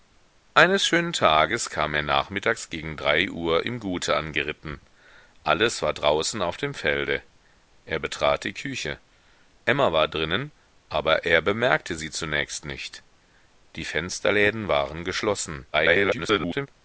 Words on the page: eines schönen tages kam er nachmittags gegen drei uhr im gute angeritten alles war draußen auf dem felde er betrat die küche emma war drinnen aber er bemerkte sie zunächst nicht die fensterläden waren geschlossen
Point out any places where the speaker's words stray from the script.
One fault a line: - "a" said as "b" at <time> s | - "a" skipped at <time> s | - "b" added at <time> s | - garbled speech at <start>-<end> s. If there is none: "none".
- garbled speech at 15.7-16.7 s